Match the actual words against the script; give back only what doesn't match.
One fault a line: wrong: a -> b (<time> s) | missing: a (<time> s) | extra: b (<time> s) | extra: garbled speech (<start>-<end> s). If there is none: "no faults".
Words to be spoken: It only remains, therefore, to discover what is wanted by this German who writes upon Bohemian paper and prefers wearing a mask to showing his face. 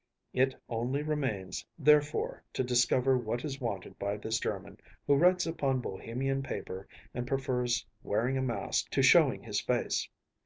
no faults